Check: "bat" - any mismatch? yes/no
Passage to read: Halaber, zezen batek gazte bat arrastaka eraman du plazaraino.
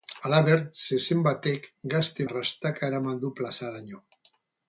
yes